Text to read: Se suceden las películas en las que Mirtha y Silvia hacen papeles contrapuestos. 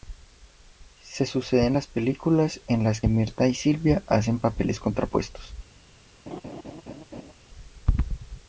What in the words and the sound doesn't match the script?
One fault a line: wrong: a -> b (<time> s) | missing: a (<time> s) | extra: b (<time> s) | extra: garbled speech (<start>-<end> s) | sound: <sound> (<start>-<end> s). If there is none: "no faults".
missing: que (3.0 s)
sound: laugh (6.3-7.3 s)